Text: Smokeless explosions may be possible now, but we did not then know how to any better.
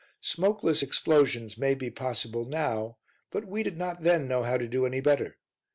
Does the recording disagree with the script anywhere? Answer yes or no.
yes